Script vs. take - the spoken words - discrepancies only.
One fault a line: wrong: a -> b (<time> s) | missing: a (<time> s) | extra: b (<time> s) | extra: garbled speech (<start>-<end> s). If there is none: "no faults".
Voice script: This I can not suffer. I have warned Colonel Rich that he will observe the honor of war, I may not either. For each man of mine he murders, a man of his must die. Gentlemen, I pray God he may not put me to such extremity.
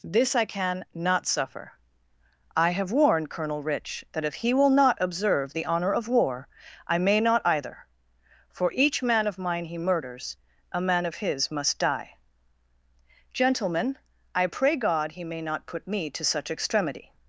extra: if (4.2 s)
extra: not (4.7 s)